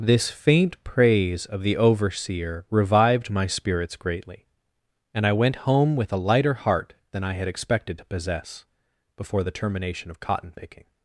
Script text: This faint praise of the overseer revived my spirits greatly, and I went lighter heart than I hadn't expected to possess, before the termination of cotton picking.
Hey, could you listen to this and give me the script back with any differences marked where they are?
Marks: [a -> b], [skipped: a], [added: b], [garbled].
This faint praise of the overseer revived my spirits greatly, and I went [added: home with a] lighter heart than I [hadn't -> had] expected to possess, before the termination of cotton picking.